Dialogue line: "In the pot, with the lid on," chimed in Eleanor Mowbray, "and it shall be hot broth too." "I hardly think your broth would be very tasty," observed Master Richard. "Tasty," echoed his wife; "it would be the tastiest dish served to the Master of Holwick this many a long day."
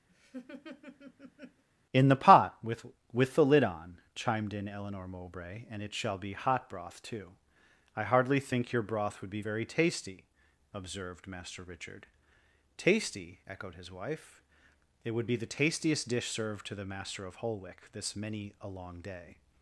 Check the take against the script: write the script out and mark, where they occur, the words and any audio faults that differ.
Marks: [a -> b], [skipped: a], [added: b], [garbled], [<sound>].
[laugh] "In the pot, with [added: with] the lid on," chimed in Eleanor Mowbray, "and it shall be hot broth too." "I hardly think your broth would be very tasty," observed Master Richard. "Tasty," echoed his wife; "it would be the tastiest dish served to the Master of Holwick this many a long day."